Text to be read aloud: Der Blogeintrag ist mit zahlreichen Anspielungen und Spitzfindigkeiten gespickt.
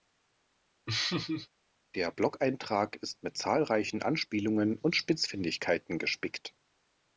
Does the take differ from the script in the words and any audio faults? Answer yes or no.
yes